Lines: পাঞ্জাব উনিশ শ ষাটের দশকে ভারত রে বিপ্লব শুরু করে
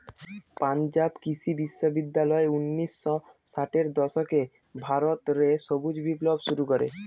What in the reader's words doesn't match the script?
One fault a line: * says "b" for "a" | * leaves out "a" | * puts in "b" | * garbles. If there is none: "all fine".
* puts in "কৃষি বিশ্ববিদ্যালয়"
* puts in "সবুজ"